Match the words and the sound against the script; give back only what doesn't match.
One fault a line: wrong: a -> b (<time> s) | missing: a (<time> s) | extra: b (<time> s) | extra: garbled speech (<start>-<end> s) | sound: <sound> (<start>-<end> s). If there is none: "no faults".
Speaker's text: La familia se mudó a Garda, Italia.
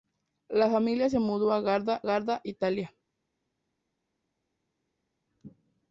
extra: Garda (2.0 s)